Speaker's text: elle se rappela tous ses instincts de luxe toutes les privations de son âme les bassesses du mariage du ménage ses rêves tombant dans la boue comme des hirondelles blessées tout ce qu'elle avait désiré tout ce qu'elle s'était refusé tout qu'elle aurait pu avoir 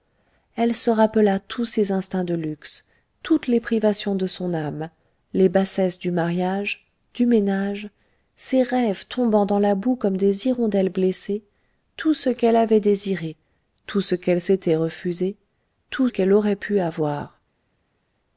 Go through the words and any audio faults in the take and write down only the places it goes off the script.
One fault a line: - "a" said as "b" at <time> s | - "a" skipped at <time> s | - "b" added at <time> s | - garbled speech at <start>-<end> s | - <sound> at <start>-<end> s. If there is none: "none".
none